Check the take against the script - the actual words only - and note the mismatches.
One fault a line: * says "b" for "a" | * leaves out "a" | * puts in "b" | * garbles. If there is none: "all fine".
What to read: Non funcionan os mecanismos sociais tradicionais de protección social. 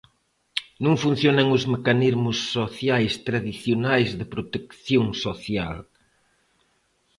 all fine